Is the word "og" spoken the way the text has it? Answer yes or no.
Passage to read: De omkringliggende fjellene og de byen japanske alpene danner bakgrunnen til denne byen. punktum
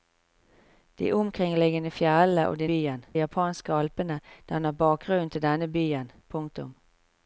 yes